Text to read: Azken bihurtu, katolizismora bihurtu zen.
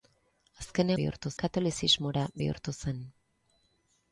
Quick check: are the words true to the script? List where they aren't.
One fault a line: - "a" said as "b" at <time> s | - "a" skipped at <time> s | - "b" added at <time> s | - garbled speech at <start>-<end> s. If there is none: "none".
none